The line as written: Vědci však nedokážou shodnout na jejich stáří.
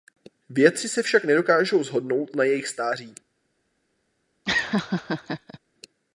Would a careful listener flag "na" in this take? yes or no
no